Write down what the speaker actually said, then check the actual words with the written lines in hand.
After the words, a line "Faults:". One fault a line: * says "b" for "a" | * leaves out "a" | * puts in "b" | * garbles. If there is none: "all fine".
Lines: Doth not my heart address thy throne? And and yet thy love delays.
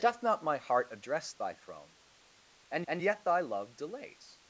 Doth not my heart address thy throne? And and yet thy love delays.
Faults:
all fine